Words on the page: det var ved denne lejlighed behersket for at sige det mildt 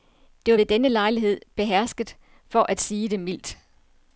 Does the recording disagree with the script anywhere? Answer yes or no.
no